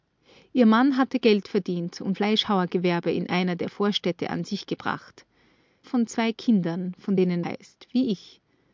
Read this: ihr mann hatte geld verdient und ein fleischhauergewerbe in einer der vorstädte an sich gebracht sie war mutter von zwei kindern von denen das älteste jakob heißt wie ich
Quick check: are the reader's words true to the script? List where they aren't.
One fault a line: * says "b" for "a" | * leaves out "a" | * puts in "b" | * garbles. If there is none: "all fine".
* leaves out "ein"
* leaves out "sie war mutter"
* leaves out "das älteste jakob"